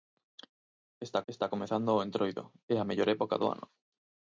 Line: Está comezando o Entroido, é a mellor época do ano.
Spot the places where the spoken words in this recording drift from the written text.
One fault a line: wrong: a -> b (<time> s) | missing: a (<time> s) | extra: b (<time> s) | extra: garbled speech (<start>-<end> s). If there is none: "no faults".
extra: está (1.3 s)